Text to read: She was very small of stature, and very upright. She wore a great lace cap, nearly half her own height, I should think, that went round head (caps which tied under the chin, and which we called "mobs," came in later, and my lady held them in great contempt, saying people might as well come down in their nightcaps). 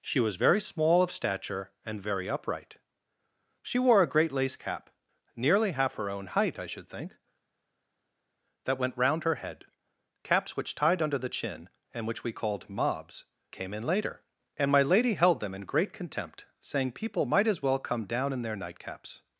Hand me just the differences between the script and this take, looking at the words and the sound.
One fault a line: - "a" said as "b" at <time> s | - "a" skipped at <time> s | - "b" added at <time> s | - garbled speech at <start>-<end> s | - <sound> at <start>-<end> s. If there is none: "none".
- "her" added at 9.2 s